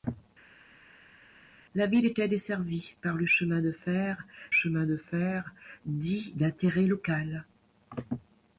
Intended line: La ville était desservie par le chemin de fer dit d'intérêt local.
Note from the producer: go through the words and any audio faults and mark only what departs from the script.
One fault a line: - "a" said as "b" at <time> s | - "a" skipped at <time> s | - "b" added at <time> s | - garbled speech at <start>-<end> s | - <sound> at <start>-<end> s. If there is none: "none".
- "chemin de fer" added at 4.5 s